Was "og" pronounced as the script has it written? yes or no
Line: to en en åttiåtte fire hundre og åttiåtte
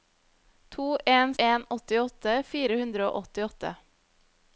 yes